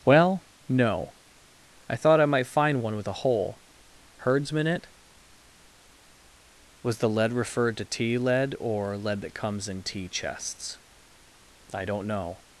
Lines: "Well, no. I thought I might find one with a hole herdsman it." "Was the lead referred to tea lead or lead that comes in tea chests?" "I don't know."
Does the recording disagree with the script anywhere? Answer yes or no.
no